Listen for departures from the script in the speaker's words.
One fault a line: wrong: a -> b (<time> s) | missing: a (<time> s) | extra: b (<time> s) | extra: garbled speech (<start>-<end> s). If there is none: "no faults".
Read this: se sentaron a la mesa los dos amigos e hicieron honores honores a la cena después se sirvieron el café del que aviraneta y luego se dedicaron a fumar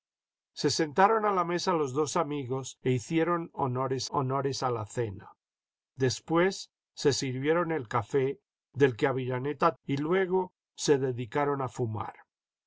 no faults